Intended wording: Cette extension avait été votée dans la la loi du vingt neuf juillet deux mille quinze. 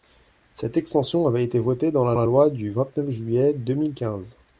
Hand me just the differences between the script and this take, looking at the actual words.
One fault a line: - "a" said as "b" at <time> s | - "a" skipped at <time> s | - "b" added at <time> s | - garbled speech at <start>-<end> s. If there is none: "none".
none